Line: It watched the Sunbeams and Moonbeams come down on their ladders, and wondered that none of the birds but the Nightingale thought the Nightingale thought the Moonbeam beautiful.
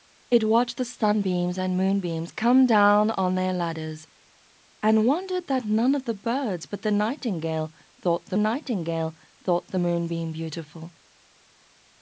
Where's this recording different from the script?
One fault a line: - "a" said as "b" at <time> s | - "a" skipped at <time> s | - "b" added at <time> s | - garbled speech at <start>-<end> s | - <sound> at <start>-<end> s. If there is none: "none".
none